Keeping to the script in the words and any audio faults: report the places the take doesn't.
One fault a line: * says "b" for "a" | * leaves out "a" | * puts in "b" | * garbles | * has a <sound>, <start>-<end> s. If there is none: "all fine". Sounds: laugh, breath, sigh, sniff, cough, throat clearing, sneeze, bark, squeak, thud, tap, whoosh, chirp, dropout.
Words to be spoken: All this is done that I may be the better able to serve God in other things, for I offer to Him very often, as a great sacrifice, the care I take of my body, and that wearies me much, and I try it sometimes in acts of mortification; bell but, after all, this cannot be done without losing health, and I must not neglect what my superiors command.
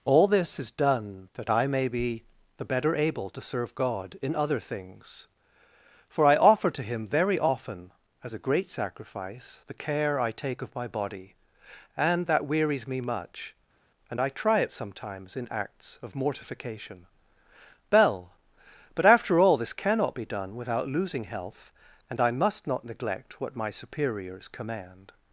all fine